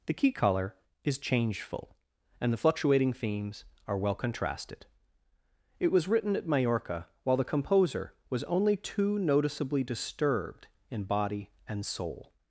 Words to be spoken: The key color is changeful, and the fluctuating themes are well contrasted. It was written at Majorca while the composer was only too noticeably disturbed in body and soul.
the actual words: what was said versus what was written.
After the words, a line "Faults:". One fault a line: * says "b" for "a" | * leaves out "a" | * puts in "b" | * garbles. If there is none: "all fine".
The key color is changeful, and the fluctuating themes are well contrasted. It was written at Majorca while the composer was only too noticeably disturbed in body and soul.
Faults:
all fine